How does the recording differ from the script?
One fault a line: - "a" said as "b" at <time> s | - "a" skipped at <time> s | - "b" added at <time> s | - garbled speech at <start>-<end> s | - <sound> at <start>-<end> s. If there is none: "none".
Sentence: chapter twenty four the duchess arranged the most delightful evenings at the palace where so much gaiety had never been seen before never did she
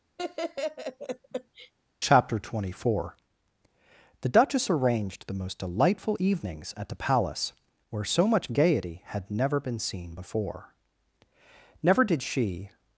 - laugh at 0.2-1.7 s